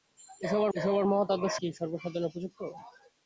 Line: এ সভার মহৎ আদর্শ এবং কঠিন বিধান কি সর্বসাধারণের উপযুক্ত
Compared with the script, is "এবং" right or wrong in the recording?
wrong